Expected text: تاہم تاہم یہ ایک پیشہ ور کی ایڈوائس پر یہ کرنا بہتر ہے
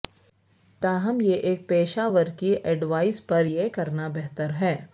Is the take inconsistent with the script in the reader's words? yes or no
yes